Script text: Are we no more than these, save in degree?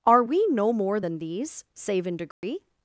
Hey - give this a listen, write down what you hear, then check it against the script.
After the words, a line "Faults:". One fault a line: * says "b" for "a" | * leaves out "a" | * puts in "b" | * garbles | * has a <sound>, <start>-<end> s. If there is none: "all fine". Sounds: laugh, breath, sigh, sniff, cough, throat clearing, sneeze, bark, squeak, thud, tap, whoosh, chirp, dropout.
Are we no more than these, save in degree?
Faults:
* has a dropout, 2.3-2.4 s